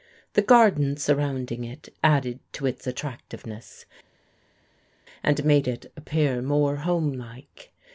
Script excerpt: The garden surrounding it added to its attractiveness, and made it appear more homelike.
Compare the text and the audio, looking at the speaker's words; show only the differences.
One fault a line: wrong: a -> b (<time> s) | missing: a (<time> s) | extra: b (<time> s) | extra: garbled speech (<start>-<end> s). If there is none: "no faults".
no faults